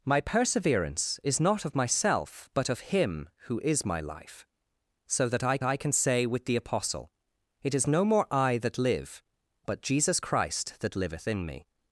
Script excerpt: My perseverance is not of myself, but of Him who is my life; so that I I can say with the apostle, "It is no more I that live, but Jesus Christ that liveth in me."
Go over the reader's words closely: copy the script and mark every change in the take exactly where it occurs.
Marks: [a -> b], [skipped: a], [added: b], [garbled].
My perseverance is not of myself, but of Him who is my life; so that I I can say with the apostle, "It is no more I that live, but Jesus Christ that liveth in me."